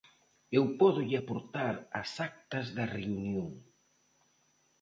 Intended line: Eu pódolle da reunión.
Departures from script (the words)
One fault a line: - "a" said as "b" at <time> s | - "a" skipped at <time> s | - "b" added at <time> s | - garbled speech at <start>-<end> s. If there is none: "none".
- "aportar as actas" added at 1.2 s